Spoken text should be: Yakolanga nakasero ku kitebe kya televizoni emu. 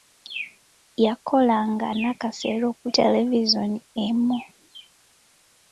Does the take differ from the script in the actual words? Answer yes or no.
yes